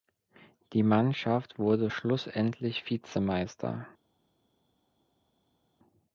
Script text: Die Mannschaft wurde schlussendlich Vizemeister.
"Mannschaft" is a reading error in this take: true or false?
false